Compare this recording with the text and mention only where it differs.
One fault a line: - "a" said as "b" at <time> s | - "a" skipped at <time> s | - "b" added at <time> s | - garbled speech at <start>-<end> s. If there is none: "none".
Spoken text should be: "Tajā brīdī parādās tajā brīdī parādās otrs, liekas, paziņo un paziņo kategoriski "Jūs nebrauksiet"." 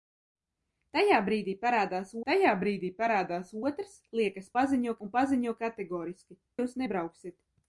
none